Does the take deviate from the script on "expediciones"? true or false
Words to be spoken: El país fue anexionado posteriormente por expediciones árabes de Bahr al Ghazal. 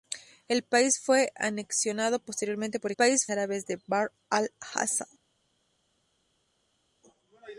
true